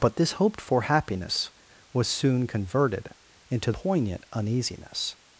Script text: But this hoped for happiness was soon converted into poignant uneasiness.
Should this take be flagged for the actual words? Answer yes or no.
no